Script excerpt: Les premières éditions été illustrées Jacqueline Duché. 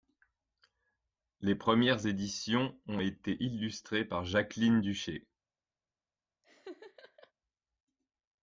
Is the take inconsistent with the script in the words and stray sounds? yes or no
yes